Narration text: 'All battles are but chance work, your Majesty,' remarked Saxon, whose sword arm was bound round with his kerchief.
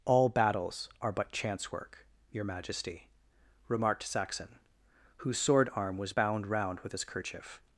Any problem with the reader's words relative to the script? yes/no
no